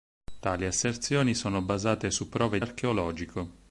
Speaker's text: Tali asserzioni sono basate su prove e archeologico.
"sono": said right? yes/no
yes